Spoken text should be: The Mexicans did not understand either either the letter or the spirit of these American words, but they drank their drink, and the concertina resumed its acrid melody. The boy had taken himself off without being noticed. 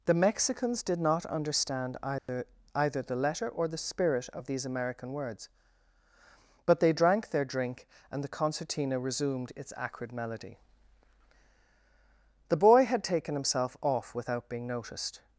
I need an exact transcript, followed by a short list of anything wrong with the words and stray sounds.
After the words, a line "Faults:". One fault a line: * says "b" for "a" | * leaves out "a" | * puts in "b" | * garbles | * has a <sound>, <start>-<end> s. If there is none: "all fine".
The Mexicans did not understand either either the letter or the spirit of these American words, but they drank their drink, and the concertina resumed its acrid melody. The boy had taken himself off without being noticed.
Faults:
* has a dropout, 2.2-2.3 s